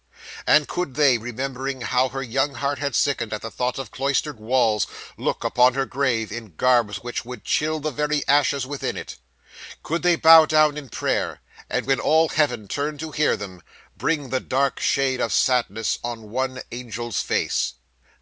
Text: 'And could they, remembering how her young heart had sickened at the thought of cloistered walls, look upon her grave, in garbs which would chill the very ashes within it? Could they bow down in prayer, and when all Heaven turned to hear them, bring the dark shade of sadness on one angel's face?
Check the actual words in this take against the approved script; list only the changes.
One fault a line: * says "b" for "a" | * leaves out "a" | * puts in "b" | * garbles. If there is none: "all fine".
all fine